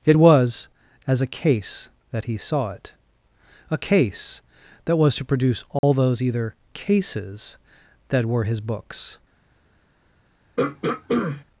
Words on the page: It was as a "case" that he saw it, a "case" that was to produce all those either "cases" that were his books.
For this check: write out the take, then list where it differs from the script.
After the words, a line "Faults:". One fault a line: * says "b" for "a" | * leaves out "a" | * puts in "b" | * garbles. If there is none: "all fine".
It was as a "case" that he saw it, a "case" that was to produce all those either "cases" that were his books.
Faults:
all fine